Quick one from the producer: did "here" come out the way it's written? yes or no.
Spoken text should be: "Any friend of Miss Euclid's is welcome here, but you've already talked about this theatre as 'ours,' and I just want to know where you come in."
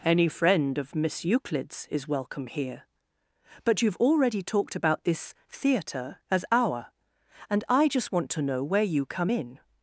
yes